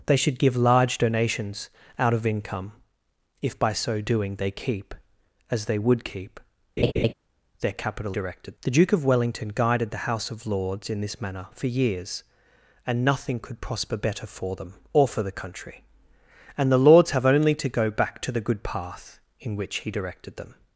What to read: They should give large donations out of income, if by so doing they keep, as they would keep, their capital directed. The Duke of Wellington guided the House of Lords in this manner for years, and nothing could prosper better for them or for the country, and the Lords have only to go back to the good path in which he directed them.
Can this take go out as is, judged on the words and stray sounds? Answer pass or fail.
fail